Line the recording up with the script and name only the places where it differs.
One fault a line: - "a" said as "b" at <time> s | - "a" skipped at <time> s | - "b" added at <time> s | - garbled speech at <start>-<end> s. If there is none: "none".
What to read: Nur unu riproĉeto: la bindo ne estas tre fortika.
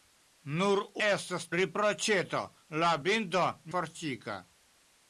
- "unu" said as "estas" at 1.1 s
- "ne estas tre" skipped at 3.4 s